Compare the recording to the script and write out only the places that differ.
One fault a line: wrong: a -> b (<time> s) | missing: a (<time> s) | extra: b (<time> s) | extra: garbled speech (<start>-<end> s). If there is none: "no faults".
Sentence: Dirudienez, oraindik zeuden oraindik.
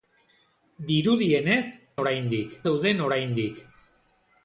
no faults